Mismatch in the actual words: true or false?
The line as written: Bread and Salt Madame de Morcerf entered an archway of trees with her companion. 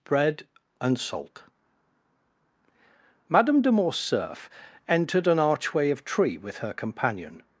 true